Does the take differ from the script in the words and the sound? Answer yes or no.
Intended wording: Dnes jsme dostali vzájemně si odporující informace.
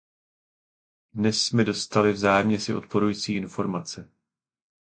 no